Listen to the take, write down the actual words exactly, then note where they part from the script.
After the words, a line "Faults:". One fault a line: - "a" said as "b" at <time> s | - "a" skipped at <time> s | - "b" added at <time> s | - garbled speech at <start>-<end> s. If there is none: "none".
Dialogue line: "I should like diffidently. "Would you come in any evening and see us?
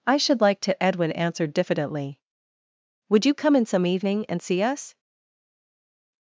"I should like to," Edwin answered diffidently. "Would you come in some evening and see us?
Faults:
- "to Edwin answered" added at 0.6 s
- "any" said as "some" at 3.7 s